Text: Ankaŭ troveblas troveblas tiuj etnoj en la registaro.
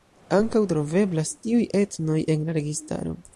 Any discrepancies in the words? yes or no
yes